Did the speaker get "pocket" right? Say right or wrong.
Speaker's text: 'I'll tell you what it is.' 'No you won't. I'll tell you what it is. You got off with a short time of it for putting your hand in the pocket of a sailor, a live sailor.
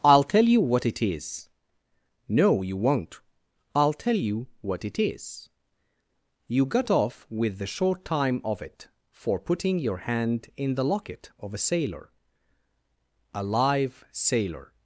wrong